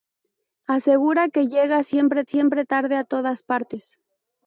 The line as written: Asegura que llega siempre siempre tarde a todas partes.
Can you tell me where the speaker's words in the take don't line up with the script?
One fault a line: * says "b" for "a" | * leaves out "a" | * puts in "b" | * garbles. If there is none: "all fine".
all fine